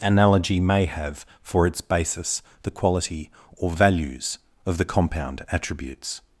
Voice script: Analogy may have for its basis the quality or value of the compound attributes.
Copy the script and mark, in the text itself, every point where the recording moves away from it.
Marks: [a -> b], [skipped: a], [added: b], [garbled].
Analogy may have for its basis the quality or [value -> values] of the compound attributes.